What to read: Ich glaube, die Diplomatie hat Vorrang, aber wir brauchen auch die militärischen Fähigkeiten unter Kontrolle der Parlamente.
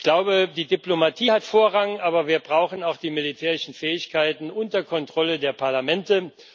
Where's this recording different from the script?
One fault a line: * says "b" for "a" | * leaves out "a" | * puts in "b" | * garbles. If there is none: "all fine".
all fine